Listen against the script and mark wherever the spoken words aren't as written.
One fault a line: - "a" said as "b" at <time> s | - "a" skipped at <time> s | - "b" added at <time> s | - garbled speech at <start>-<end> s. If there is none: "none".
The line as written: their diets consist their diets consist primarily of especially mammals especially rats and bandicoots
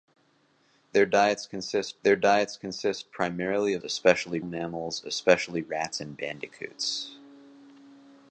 none